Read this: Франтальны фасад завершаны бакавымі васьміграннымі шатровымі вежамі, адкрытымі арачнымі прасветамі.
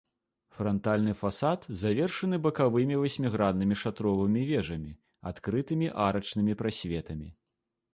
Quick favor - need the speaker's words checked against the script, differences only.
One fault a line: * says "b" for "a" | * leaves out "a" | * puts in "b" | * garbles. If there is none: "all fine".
all fine